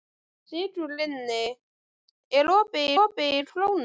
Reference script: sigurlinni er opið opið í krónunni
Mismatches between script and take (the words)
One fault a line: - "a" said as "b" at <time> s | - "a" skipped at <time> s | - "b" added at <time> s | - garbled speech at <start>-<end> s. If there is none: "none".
none